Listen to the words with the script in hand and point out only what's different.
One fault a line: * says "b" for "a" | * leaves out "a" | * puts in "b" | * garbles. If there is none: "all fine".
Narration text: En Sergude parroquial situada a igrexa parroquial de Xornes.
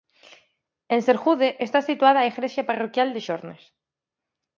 * says "está" for "parroquial"